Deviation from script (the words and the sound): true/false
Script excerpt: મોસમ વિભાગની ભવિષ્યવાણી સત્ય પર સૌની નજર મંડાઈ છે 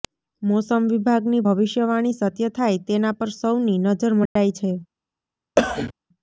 true